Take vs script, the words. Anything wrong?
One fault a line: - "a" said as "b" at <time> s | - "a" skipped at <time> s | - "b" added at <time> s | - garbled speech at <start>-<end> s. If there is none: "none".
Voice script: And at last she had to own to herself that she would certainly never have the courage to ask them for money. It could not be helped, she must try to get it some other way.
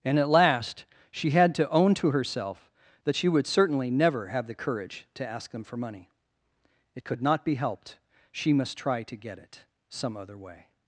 none